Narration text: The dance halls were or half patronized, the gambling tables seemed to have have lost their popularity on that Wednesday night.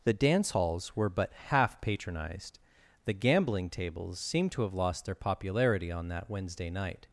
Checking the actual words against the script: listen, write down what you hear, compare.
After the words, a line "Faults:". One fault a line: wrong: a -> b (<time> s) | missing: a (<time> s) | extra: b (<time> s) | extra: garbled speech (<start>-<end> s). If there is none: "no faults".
The dance halls were but half patronized, the gambling tables seemed to have lost their popularity on that Wednesday night.
Faults:
wrong: or -> but (1.1 s)
missing: have (4.7 s)